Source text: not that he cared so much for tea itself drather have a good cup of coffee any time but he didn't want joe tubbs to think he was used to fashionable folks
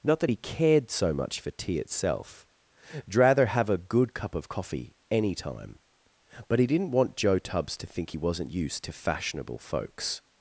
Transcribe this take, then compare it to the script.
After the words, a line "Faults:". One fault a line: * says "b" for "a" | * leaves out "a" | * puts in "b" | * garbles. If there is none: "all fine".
not that he cared so much for tea itself drather have a good cup of coffee any time but he didn't want joe tubbs to think he wasn't used to fashionable folks
Faults:
* says "wasn't" for "was"